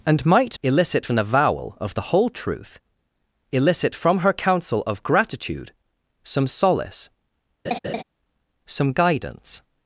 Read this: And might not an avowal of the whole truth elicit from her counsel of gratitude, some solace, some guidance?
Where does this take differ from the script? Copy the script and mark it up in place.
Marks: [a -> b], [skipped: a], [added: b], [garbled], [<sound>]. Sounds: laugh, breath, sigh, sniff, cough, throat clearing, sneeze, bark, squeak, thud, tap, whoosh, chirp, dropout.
And might [not -> elicit] an avowal of the whole truth elicit from her counsel of gratitude, some solace, [laugh] some guidance?